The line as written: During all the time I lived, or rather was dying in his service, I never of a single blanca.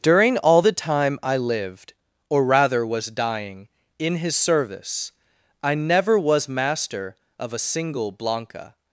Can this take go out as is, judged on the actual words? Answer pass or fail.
fail